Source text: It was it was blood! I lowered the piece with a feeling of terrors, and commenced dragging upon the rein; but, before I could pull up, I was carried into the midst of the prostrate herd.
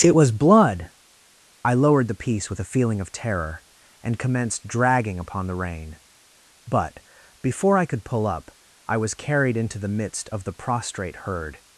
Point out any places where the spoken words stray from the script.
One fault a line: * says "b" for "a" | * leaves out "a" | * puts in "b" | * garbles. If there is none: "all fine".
* leaves out "it was"
* says "terror" for "terrors"